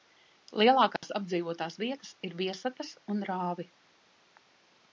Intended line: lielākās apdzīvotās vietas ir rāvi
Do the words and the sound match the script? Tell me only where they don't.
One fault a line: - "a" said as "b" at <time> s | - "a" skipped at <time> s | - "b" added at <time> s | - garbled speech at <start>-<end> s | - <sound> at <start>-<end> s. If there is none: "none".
- dropout at 1.0-1.0 s
- "viesatas un" added at 2.4 s